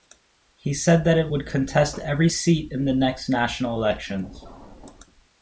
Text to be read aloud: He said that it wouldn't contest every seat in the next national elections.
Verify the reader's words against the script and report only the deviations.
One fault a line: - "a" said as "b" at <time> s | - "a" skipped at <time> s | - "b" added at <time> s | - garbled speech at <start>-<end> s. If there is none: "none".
- "wouldn't" said as "would" at 1.3 s